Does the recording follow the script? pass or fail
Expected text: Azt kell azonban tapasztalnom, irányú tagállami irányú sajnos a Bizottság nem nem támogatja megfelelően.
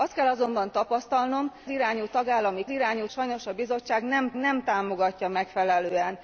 pass